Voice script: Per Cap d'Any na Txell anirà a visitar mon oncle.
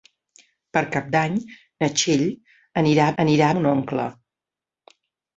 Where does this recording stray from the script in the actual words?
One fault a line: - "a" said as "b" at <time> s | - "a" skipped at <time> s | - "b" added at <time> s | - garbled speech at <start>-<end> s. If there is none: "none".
- "visitar" said as "anirà" at 3.2 s